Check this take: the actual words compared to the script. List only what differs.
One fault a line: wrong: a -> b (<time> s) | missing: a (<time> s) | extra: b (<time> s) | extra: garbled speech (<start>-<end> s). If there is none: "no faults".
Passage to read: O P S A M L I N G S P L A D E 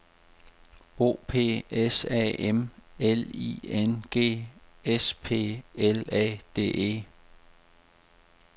no faults